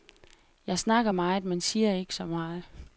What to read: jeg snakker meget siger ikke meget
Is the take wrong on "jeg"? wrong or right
right